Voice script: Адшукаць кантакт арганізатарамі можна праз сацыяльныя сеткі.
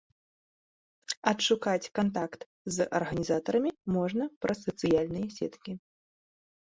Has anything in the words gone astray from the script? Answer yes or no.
yes